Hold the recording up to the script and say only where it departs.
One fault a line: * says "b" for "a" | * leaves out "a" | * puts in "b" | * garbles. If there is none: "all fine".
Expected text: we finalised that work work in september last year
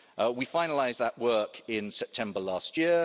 * leaves out "work"